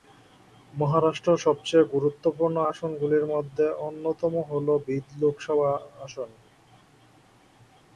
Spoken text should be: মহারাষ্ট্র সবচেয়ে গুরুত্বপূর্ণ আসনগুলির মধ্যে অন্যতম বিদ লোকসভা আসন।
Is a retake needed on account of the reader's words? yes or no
yes